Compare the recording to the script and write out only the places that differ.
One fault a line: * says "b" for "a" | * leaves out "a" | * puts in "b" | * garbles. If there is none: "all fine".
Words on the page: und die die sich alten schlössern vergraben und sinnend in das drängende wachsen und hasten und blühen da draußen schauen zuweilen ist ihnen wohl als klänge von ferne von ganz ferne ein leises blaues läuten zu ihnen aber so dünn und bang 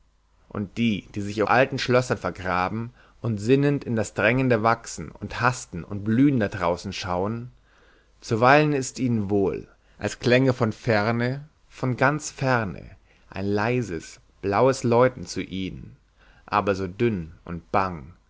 all fine